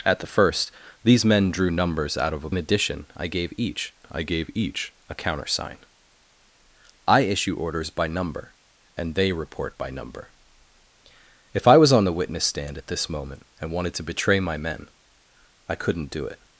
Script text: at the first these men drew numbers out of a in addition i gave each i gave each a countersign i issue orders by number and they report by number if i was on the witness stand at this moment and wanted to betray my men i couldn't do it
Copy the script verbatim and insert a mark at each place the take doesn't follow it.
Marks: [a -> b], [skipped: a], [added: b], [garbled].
at the first these men drew numbers out of a in addition i gave each i gave each a countersign i issue orders by number and they report by number if i was on the witness stand at this moment and wanted to betray my men i couldn't do it